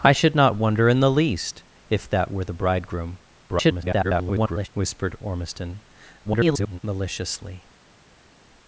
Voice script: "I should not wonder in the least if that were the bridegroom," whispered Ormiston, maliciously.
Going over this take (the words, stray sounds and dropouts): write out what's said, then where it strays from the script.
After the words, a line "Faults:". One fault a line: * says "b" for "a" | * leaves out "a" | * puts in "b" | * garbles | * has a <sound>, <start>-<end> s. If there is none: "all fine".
"I should not wonder in the least if that were the bridegroom," [garbled] whispered Ormiston, [garbled] maliciously.
Faults:
* garbles
* garbles